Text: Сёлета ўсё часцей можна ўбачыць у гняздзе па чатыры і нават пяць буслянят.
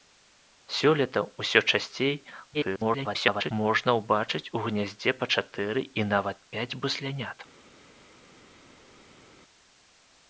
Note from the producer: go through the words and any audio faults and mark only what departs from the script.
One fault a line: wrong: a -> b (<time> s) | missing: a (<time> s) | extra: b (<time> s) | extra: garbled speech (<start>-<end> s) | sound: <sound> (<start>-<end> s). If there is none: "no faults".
extra: garbled speech (2.5-3.5 s)